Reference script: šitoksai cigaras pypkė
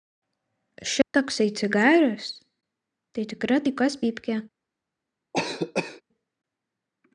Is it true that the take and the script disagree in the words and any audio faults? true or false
true